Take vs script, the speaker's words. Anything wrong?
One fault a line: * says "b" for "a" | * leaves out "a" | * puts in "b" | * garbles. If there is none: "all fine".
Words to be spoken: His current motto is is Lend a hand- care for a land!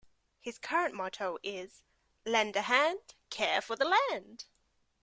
* leaves out "is"
* says "the" for "a"